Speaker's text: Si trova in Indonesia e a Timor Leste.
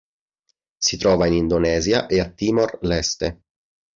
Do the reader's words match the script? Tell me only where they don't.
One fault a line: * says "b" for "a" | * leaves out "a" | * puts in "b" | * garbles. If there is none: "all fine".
all fine